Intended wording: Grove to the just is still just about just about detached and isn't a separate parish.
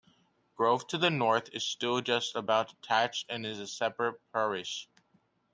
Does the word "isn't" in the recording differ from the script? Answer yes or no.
yes